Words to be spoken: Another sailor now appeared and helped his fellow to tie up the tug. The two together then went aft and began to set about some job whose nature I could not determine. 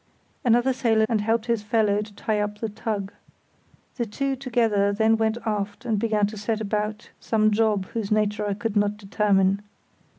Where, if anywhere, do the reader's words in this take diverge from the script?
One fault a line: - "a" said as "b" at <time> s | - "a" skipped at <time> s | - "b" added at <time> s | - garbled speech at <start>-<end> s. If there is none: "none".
- "now appeared" skipped at 1.1 s